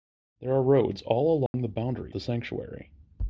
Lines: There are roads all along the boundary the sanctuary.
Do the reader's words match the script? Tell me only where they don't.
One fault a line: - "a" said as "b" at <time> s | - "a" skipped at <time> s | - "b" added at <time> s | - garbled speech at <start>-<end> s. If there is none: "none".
none